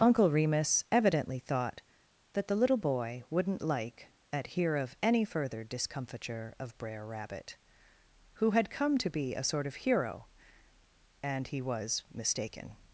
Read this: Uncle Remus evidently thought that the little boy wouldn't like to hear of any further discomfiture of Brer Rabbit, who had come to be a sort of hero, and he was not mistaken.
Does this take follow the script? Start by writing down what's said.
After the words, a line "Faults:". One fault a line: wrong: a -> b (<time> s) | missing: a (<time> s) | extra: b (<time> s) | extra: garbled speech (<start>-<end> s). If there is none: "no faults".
Uncle Remus evidently thought that the little boy wouldn't like at hear of any further discomfiture of Brer Rabbit, who had come to be a sort of hero, and he was mistaken.
Faults:
wrong: to -> at (4.3 s)
missing: not (12.0 s)